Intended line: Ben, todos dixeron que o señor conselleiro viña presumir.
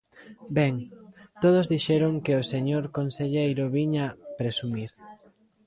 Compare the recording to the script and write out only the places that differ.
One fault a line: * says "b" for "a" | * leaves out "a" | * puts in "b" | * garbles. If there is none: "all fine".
all fine